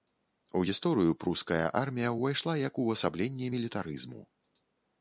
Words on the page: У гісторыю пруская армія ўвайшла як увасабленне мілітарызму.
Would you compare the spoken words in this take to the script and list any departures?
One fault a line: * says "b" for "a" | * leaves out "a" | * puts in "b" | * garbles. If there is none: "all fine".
all fine